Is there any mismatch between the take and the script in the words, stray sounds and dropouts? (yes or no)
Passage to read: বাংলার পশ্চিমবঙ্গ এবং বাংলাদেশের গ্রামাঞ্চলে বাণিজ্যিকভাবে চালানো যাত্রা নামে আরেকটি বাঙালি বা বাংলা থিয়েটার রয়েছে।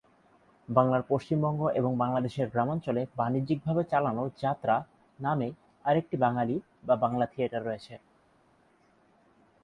no